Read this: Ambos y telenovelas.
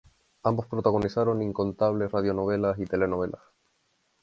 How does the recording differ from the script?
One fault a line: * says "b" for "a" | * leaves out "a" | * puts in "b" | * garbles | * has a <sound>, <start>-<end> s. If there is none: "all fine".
* puts in "protagonizaron incontables radionovelas"